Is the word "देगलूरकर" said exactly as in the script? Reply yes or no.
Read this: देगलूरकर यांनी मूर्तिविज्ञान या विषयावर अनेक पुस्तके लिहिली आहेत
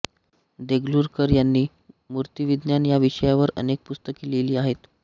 yes